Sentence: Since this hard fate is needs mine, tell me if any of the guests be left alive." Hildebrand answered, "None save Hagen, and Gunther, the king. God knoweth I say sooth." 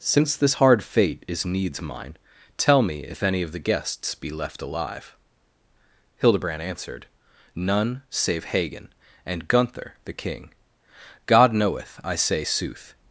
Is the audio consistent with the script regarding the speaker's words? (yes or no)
yes